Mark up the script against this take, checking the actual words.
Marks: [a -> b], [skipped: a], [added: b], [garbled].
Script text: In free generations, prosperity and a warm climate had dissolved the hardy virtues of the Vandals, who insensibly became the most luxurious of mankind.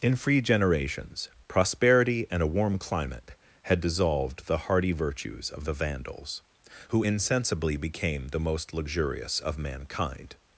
In free generations, prosperity and a warm climate had dissolved the hardy virtues of the Vandals, who insensibly became the most luxurious of mankind.